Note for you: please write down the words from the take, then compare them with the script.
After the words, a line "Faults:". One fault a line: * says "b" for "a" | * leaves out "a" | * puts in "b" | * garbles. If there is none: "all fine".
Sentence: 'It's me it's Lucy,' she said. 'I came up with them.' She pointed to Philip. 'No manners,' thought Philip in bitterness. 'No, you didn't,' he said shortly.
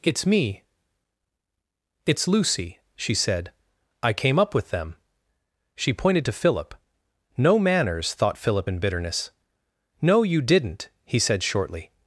'It's me it's Lucy,' she said. 'I came up with them.' She pointed to Philip. 'No manners,' thought Philip in bitterness. 'No, you didn't,' he said shortly.
Faults:
all fine